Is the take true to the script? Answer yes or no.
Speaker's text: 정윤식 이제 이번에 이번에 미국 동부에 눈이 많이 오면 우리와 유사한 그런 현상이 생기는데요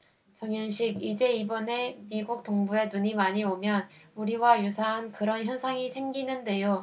no